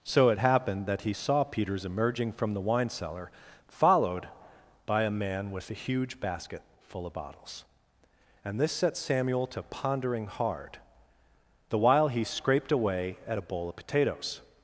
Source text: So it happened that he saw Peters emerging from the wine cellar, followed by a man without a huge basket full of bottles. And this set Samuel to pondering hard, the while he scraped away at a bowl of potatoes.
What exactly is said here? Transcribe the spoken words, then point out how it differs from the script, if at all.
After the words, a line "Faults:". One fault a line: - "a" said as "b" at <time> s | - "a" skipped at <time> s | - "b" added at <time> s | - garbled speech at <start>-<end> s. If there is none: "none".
So it happened that he saw Peters emerging from the wine cellar, followed by a man with a huge basket full of bottles. And this set Samuel to pondering hard, the while he scraped away at a bowl of potatoes.
Faults:
- "without" said as "with" at 5.5 s